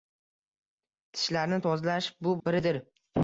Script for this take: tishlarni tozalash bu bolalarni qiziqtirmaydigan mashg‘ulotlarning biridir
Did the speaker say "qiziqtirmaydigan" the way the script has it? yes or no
no